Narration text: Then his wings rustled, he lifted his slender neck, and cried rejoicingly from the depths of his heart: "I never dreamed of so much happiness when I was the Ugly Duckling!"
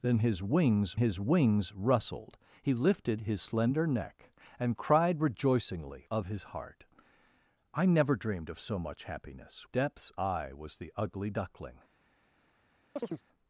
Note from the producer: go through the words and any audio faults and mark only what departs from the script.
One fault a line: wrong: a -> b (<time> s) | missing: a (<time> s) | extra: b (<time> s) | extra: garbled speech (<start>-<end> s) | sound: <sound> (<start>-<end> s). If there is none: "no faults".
extra: his wings (1.0 s)
missing: from the depths (6.0 s)
wrong: when -> depths (9.6 s)
sound: chirp (13.0-13.2 s)